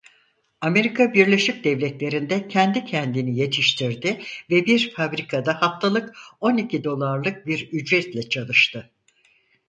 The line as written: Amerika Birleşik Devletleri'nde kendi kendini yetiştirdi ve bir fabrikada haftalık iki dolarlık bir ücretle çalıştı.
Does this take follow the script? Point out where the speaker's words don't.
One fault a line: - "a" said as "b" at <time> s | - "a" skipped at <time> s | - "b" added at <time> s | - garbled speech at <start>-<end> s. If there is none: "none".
- "on" added at 6.4 s